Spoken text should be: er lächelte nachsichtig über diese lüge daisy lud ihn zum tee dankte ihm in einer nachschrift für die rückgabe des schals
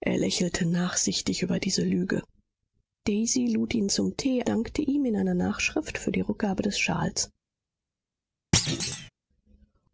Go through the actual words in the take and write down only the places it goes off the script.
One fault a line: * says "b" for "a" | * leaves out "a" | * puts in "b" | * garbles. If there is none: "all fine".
all fine